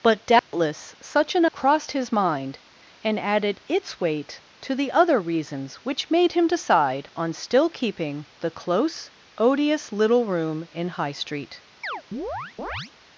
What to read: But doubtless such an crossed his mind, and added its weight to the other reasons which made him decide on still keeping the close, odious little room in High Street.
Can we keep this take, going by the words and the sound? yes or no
no